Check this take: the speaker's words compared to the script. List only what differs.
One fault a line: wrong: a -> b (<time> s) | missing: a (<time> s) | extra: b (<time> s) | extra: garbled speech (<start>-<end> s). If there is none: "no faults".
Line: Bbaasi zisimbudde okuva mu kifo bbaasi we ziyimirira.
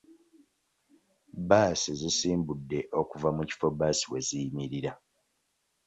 no faults